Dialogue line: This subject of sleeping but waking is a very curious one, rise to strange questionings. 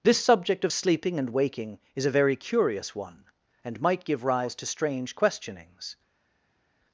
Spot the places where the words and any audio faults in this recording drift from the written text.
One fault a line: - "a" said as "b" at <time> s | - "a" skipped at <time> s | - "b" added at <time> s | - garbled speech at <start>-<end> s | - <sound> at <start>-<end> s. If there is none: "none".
- "but" said as "and" at 1.2 s
- "and might give" added at 3.6 s